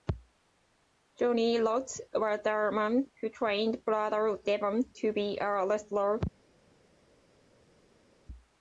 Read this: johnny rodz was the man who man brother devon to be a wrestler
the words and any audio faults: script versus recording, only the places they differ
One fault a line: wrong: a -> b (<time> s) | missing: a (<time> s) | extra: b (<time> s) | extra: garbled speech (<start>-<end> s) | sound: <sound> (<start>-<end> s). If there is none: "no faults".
wrong: man -> trained (3.3 s)